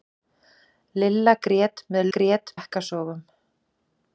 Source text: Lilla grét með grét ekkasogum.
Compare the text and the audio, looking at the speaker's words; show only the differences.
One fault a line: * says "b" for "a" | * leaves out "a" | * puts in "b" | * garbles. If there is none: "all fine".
all fine